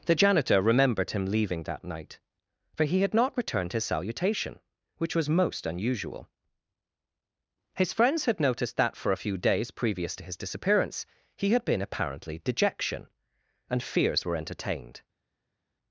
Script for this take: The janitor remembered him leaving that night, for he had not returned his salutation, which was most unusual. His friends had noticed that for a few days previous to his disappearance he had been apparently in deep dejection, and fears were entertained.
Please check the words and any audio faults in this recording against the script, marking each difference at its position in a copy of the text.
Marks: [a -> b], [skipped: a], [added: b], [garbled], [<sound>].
The janitor remembered him leaving that night, for he had not returned his salutation, which was most unusual. His friends had noticed that for a few days previous to his disappearance he had been apparently [skipped: in deep] dejection, and fears were entertained.